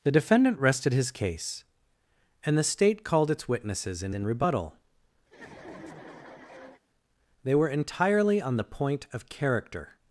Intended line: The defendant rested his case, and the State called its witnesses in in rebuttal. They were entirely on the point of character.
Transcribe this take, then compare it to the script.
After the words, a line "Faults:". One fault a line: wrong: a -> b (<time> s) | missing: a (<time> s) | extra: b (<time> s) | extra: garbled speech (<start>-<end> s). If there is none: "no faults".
The defendant rested his case, and the State called its witnesses in in rebuttal. They were entirely on the point of character.
Faults:
no faults